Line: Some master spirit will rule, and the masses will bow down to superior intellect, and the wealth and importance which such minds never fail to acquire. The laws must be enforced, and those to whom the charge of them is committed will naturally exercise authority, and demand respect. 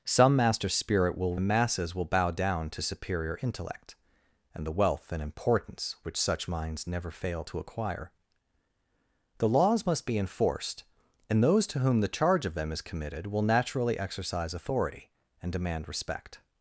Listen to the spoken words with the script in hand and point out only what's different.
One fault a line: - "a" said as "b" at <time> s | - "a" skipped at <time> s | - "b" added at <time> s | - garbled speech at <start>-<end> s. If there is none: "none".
- "rule and" skipped at 1.4 s